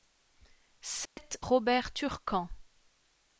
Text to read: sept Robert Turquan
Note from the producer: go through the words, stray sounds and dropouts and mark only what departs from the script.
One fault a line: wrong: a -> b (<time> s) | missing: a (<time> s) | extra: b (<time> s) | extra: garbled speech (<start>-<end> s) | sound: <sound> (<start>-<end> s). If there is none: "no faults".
sound: dropout (1.1-1.2 s)